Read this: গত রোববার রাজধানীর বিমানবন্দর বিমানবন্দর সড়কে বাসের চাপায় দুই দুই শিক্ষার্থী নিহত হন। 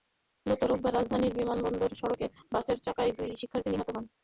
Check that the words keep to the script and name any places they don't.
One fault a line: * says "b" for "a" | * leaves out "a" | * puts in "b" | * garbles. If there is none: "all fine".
* leaves out "বিমানবন্দর"
* leaves out "দুই"